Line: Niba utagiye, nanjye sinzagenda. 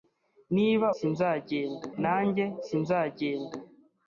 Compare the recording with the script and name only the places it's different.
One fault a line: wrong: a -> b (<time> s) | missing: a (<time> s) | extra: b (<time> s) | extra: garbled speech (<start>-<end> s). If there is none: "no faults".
wrong: utagiye -> sinzagenda (1.0 s)